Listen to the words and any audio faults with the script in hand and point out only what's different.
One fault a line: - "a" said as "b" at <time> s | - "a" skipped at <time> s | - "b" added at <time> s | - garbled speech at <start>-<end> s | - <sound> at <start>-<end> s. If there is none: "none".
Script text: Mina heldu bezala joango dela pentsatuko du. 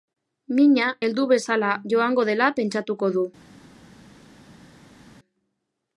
none